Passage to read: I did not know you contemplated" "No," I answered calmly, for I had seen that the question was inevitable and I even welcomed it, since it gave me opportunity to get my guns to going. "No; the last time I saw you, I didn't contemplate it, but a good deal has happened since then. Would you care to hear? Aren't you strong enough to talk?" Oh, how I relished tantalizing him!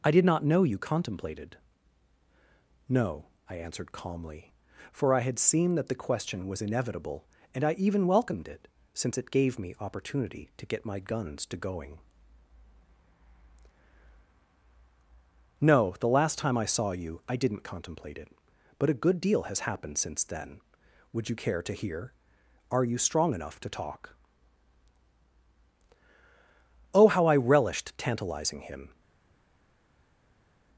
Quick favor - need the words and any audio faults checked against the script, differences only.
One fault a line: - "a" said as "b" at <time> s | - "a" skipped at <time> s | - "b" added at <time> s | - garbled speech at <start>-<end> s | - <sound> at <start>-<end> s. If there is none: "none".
- "Aren't" said as "Are" at 22.7 s